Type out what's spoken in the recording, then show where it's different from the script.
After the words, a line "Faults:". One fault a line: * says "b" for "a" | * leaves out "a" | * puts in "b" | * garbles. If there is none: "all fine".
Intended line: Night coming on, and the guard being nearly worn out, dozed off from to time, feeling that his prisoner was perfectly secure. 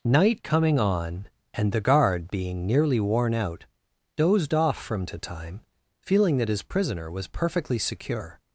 Night coming on, and the guard being nearly worn out, dozed off from to time, feeling that his prisoner was perfectly secure.
Faults:
all fine